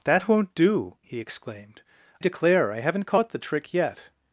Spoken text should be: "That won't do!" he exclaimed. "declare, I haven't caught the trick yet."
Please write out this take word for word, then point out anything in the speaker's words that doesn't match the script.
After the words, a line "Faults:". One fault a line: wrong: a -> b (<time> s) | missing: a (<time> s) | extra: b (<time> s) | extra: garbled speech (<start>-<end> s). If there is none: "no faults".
"That won't do!" he exclaimed. "declare, I haven't caught the trick yet."
Faults:
no faults